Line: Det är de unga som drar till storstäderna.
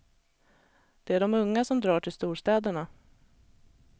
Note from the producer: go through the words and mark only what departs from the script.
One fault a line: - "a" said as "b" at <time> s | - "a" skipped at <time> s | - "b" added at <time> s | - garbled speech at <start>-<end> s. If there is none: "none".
none